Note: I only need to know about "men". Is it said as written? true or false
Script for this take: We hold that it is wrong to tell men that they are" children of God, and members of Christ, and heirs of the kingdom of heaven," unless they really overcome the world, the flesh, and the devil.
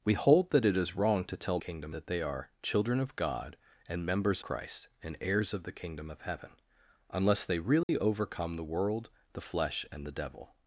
false